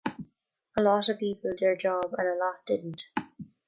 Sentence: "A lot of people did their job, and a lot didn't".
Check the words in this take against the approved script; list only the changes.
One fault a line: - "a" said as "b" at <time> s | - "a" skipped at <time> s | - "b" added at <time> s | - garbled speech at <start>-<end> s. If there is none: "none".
- "did" skipped at 1.5 s